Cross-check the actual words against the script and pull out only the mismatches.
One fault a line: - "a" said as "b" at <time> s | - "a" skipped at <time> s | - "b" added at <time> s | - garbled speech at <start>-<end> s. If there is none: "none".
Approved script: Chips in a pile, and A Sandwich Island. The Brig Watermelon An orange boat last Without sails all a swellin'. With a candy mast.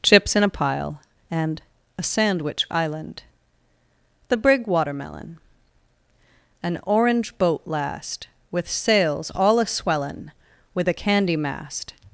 - "Without" said as "With" at 8.5 s